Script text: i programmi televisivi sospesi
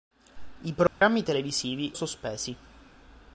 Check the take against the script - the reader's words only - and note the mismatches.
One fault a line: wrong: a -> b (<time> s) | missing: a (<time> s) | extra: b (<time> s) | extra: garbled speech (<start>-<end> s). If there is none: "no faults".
no faults